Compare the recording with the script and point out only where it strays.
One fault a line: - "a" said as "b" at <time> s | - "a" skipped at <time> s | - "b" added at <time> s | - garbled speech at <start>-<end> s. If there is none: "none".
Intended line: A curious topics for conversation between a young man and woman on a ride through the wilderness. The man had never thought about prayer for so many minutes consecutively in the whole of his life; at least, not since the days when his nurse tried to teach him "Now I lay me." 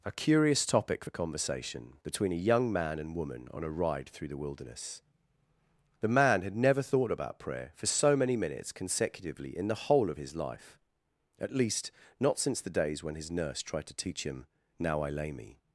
- "topics" said as "topic" at 0.7 s